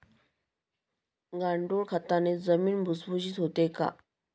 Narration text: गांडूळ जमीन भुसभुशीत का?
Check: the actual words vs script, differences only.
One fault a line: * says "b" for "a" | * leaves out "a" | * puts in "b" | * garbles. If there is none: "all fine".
* puts in "खताने"
* puts in "होते"